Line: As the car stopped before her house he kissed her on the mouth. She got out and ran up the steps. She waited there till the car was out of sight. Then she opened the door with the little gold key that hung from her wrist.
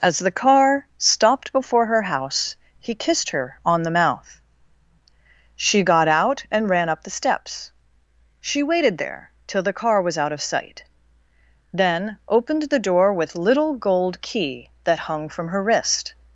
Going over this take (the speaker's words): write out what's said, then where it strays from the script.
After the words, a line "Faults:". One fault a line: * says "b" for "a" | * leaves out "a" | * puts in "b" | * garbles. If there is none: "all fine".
As the car stopped before her house he kissed her on the mouth. She got out and ran up the steps. She waited there till the car was out of sight. Then opened the door with little gold key that hung from her wrist.
Faults:
* leaves out "she"
* leaves out "the"